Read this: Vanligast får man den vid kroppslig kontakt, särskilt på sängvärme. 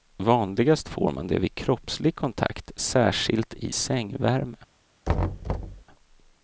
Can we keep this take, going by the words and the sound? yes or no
no